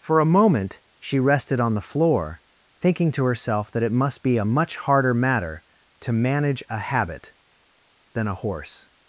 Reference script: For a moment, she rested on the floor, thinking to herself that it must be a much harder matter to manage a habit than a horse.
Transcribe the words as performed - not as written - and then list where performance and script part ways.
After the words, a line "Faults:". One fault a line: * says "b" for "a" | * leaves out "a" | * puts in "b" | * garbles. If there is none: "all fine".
For a moment, she rested on the floor, thinking to herself that it must be a much harder matter to manage a habit than a horse.
Faults:
all fine